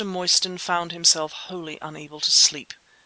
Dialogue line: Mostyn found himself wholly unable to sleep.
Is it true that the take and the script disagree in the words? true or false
false